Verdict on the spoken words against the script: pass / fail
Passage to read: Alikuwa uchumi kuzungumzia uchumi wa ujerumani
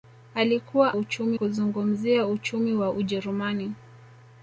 pass